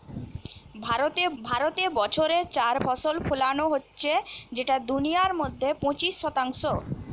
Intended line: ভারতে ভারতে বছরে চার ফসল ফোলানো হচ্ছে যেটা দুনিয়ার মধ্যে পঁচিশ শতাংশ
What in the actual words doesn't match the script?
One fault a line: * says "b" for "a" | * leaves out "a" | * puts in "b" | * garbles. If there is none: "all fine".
all fine